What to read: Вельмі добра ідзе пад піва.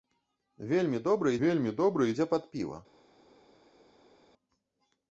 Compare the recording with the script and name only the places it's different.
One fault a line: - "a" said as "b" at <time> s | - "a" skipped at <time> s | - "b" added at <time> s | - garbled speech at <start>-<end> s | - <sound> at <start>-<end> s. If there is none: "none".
- "вельмі добра" added at 1.4 s